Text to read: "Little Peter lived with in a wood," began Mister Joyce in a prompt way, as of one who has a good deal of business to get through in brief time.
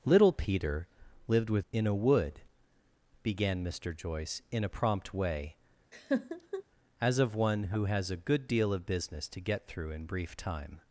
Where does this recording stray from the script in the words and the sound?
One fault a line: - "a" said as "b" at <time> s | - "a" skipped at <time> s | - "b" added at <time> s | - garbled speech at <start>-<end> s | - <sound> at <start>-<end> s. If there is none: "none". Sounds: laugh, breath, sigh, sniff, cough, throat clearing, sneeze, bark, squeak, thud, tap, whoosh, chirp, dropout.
- laugh at 5.9-6.6 s